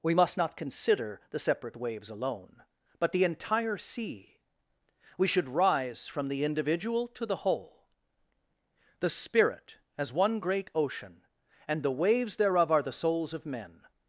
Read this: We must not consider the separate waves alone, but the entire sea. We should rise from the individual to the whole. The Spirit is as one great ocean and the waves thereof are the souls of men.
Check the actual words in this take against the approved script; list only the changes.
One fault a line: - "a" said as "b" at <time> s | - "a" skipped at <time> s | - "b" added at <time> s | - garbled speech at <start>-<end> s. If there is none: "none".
- "is" skipped at 9.8 s